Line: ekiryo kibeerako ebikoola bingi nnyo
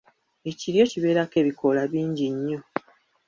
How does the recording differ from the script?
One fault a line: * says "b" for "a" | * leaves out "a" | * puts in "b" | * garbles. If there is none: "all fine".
all fine